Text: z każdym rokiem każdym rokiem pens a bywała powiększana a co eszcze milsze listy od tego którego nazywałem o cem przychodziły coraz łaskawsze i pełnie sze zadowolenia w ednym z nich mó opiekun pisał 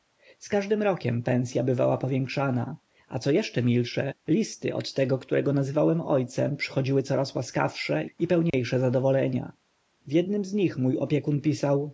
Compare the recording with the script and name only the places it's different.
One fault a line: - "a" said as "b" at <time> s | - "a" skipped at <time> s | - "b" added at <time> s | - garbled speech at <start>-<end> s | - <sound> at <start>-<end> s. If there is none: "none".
- "każdym rokiem" skipped at 1.2 s
- dropout at 8.5-8.5 s